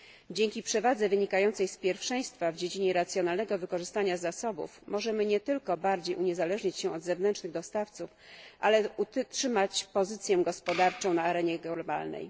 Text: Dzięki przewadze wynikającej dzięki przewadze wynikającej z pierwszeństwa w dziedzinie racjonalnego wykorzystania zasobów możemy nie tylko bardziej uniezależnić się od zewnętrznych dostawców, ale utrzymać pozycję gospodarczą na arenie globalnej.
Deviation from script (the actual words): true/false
true